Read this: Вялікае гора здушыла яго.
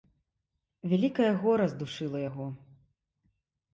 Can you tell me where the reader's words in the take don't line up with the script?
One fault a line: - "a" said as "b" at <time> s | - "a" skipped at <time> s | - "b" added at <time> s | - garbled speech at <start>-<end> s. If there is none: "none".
none